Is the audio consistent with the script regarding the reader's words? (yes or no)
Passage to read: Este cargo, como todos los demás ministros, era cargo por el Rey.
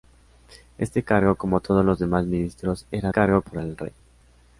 yes